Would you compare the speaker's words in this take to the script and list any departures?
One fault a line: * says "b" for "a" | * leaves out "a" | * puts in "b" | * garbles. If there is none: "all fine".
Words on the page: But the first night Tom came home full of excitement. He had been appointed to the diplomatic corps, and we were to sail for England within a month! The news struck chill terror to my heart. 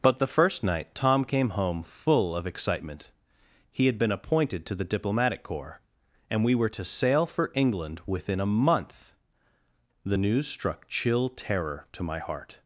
all fine